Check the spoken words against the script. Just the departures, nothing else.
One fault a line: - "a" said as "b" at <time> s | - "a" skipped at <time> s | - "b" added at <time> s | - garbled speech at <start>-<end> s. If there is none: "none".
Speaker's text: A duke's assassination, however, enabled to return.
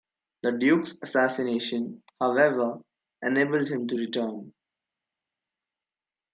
- "A" said as "The" at 0.4 s
- "him" added at 3.7 s